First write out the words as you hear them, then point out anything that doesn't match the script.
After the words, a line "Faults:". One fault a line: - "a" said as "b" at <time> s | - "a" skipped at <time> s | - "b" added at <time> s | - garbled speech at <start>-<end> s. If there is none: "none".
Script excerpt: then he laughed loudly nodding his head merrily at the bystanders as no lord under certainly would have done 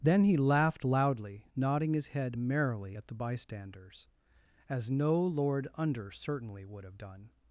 then he laughed loudly nodding his head merrily at the bystanders as no lord under certainly would have done
Faults:
none